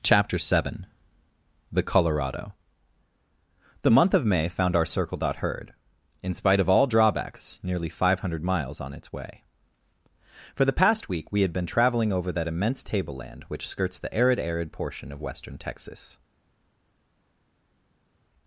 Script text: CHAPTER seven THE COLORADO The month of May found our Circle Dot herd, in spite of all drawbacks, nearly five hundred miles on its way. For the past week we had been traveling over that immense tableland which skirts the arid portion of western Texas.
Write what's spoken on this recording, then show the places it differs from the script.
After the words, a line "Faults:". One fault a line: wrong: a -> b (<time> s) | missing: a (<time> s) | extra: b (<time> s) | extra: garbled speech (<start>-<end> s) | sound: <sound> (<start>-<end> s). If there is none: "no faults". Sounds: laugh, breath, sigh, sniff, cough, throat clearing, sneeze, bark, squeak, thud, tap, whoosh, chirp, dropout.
CHAPTER seven THE COLORADO The month of May found our Circle Dot herd, in spite of all drawbacks, nearly five hundred miles on its way. For the past week we had been traveling over that immense tableland which skirts the arid arid portion of western Texas.
Faults:
extra: arid (14.4 s)